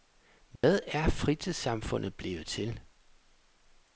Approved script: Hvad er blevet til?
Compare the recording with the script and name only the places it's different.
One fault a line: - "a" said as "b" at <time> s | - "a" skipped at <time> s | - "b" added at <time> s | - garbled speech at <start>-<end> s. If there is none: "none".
- "fritidssamfundet" added at 1.1 s